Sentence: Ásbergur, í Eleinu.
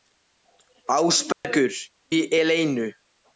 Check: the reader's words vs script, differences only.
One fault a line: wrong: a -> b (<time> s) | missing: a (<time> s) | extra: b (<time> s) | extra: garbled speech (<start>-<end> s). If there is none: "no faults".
no faults